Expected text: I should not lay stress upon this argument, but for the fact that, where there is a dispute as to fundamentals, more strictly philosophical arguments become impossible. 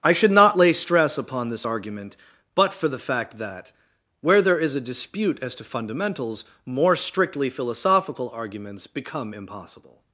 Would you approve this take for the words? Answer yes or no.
yes